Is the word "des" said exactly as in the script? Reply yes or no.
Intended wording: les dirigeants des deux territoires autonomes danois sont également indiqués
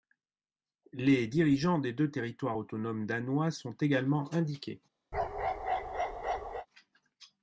yes